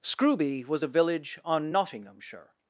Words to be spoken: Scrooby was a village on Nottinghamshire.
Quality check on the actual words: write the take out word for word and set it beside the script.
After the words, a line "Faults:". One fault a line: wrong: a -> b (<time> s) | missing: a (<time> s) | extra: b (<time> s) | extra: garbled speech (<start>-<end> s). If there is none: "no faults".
Scrooby was a village on Nottinghamshire.
Faults:
no faults